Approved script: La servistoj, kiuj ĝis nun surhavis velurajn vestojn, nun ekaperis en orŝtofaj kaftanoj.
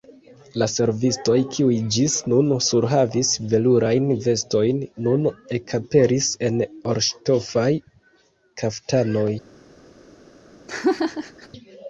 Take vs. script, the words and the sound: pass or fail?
fail